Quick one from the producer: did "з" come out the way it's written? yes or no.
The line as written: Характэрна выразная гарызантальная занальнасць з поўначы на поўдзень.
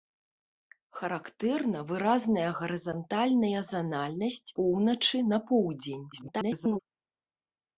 no